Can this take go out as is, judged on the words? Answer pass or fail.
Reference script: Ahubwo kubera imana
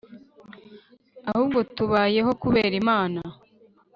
fail